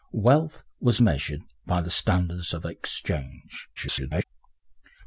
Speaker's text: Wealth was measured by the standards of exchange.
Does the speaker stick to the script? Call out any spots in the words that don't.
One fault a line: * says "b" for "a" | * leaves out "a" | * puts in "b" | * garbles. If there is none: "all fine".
* garbles